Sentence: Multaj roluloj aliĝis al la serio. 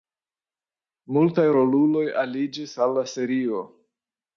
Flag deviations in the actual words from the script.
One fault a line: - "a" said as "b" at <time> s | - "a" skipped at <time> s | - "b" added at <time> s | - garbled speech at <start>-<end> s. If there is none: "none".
none